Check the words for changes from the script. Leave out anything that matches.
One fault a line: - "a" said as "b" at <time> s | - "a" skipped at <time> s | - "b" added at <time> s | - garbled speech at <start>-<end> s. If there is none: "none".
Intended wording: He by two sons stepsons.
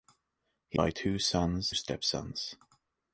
none